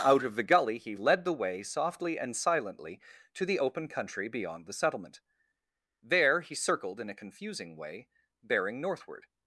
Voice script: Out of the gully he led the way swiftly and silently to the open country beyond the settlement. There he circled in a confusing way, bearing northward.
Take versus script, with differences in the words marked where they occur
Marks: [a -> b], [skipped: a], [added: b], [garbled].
Out of the gully he led the way [swiftly -> softly] and silently to the open country beyond the settlement. There he circled in a confusing way, bearing northward.